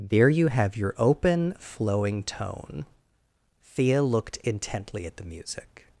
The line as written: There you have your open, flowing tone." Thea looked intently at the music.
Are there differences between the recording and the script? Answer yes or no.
no